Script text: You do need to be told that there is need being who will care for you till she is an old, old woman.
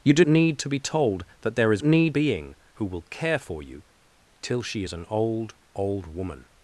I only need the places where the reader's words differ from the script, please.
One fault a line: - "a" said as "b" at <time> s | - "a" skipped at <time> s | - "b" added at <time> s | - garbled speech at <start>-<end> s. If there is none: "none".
none